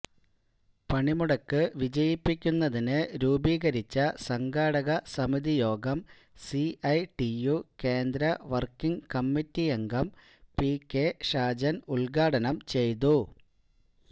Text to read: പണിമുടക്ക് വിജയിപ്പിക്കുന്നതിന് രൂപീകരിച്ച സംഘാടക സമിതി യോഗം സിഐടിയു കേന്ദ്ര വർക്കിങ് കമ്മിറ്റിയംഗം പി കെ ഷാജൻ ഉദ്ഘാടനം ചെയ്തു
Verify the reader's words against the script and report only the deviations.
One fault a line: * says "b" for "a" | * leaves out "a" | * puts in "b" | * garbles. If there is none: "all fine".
all fine